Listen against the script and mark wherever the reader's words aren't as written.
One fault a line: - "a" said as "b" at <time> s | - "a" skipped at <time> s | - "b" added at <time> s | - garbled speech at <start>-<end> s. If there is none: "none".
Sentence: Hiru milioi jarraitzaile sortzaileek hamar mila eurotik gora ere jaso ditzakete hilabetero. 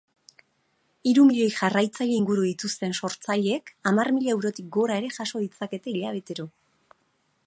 - "inguru dituzten" added at 2.2 s